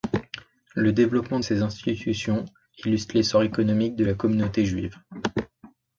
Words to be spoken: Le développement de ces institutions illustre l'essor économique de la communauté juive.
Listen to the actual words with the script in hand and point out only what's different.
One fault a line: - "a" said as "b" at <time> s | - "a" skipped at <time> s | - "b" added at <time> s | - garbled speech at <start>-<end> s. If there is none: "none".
- "de" skipped at 1.4 s